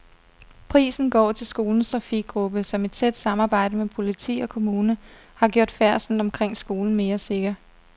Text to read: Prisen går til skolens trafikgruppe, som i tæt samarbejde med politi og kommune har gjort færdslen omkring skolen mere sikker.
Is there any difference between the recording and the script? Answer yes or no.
no